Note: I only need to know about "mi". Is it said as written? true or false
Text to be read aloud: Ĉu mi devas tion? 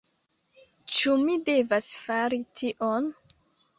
true